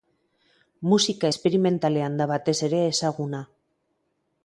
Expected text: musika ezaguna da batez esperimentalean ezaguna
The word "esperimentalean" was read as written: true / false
false